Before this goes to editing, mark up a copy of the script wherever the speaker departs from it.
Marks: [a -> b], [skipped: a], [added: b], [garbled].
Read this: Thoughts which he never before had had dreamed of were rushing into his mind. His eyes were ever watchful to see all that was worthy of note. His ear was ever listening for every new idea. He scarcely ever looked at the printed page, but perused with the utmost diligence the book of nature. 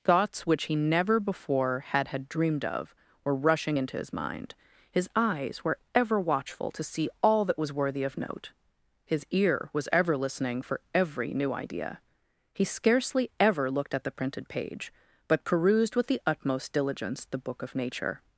Thoughts which he never before had had dreamed of were rushing into his mind. His eyes were ever watchful to see all that was worthy of note. His ear was ever listening for every new idea. He scarcely ever looked at the printed page, but perused with the utmost diligence the book of nature.